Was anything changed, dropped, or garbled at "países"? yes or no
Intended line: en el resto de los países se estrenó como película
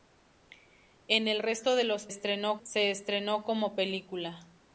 yes